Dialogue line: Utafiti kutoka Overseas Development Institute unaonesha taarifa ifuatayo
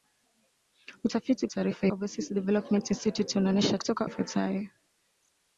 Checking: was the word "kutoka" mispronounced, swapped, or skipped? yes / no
yes